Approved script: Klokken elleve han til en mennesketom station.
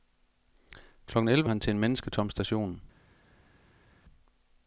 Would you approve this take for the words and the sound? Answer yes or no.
yes